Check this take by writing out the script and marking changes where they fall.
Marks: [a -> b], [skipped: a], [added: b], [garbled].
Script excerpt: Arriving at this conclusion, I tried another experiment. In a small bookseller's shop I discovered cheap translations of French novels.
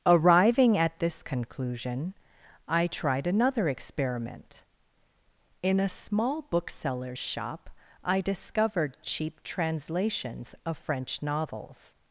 Arriving at this conclusion, I tried another experiment. In a small bookseller's shop I discovered cheap translations of French novels.